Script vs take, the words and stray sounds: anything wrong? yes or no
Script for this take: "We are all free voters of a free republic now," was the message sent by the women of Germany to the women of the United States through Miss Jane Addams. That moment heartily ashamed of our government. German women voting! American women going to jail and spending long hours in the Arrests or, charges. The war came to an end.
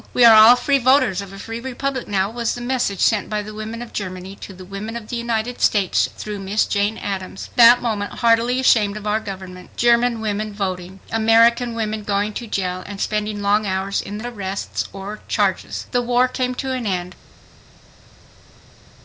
no